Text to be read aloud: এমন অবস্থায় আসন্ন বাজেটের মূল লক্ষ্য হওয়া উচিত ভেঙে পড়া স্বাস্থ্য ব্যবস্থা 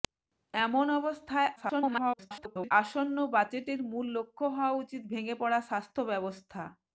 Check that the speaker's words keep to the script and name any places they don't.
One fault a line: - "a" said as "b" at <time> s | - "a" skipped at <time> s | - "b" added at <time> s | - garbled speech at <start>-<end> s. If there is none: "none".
- garbled speech at 1.6-2.7 s